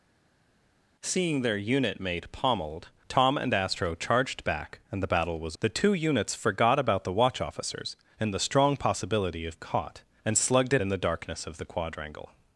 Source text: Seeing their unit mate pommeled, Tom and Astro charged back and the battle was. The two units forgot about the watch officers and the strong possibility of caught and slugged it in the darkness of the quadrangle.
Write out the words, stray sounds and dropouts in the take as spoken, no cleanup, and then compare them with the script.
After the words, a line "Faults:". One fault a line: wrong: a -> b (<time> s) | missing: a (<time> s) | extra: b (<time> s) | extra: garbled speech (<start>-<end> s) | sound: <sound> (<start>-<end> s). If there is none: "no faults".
Seeing their unit mate pommeled, Tom and Astro charged back and the battle was. The two units forgot about the watch officers and the strong possibility of caught and slugged it in the darkness of the quadrangle.
Faults:
no faults